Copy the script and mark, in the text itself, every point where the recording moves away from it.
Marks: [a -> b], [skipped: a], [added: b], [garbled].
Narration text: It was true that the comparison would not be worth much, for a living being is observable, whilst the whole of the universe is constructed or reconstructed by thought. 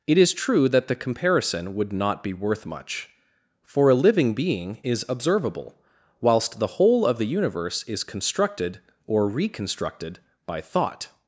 It [was -> is] true that the comparison would not be worth much, for a living being is observable, whilst the whole of the universe is constructed or reconstructed by thought.